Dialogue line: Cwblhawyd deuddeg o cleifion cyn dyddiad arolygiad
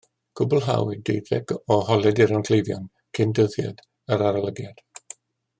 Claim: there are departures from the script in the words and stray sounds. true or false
true